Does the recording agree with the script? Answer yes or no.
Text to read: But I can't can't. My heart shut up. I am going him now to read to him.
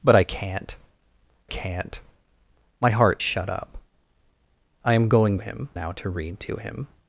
yes